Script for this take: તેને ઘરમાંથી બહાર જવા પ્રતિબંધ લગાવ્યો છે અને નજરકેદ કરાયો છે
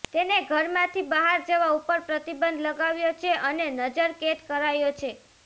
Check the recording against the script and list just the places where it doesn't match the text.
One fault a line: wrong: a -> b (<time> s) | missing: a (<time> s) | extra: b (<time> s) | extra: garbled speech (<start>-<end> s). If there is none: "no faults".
extra: ઉપર (1.7 s)